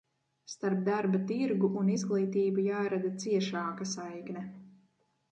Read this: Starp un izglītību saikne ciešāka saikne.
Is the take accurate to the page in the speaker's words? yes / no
no